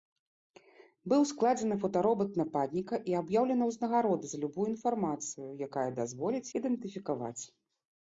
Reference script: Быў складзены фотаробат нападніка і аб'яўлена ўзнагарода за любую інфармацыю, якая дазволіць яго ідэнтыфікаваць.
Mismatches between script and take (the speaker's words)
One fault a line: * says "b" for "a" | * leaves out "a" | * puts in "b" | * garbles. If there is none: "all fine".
* leaves out "яго"